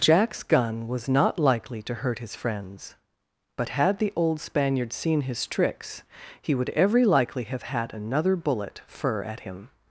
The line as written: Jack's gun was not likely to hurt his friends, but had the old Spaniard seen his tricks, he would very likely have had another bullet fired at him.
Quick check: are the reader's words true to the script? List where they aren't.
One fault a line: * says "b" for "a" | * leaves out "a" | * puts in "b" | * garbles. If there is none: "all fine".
* says "every" for "very"
* says "fir" for "fired"